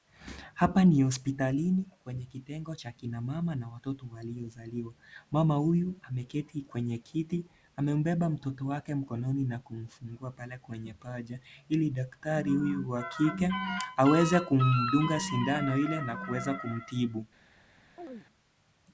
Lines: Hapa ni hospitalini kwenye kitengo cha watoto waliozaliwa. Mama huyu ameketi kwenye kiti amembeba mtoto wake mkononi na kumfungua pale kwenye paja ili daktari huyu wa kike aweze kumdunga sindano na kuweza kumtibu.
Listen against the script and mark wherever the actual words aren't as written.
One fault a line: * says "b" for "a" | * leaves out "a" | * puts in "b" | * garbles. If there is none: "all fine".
* puts in "kina mama na"
* puts in "ile"